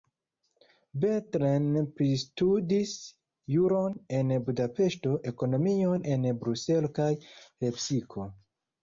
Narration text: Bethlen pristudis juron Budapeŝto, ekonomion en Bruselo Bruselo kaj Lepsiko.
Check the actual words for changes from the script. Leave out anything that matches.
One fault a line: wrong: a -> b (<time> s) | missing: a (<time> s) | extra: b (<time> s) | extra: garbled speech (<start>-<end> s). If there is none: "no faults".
extra: en (4.2 s)
missing: Bruselo (6.9 s)